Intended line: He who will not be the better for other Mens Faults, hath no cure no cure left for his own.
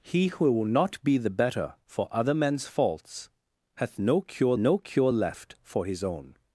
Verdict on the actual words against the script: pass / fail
pass